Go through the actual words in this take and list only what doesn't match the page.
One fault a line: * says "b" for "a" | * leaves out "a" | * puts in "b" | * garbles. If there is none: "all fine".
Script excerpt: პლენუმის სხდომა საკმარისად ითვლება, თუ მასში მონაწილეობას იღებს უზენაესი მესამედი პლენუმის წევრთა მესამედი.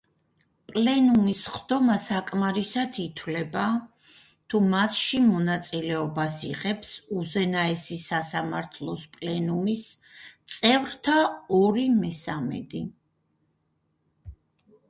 * says "სასამართლოს" for "მესამედი"
* puts in "ორი"